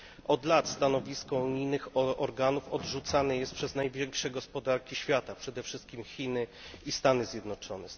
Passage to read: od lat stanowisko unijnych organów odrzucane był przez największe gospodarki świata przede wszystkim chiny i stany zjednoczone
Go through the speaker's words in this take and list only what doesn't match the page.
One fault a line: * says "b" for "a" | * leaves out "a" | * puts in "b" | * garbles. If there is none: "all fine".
* says "jest" for "był"